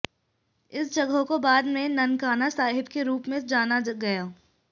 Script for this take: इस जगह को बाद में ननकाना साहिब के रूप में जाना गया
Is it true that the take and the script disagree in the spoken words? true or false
false